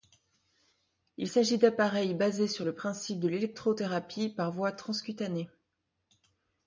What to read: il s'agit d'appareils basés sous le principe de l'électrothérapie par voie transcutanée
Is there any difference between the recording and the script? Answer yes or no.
yes